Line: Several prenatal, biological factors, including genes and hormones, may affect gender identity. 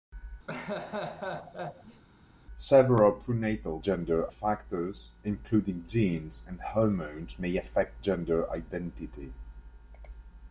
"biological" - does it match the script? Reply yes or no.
no